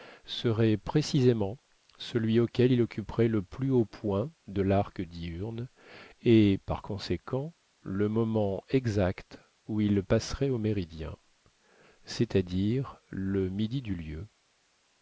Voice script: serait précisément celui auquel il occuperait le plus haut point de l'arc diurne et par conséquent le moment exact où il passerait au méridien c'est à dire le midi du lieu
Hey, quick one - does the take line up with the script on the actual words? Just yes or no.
yes